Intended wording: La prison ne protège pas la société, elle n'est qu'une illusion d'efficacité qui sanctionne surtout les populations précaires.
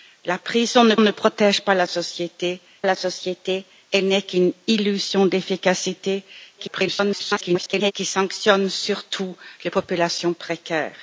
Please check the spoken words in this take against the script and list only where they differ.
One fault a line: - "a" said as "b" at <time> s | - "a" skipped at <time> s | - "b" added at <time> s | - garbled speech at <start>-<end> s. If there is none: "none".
- "ne" added at 1.0 s
- "la société" added at 2.8 s
- garbled speech at 6.6-7.9 s